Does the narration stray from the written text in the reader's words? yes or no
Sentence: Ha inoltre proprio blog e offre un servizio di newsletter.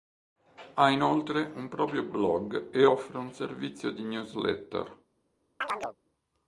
yes